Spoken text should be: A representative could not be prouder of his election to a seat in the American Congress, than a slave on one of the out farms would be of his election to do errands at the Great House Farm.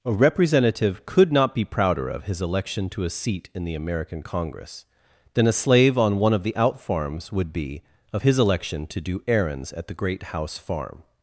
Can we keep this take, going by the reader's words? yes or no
yes